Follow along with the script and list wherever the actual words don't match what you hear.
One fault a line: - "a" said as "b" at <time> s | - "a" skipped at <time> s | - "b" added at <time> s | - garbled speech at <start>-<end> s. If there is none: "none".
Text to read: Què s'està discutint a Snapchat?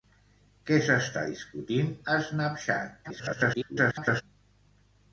- garbled speech at 3.0-4.2 s